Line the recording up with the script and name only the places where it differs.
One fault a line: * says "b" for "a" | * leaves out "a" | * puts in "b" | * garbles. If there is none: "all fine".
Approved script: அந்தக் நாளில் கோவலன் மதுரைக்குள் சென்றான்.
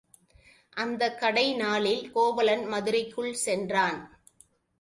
* puts in "கடை"